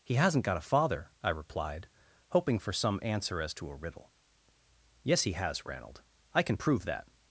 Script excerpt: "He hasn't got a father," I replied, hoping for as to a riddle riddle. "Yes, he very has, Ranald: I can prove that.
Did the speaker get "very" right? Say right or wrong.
wrong